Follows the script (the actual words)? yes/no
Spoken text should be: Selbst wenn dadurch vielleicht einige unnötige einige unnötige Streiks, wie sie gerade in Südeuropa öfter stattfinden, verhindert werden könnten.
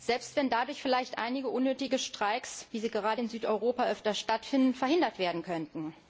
no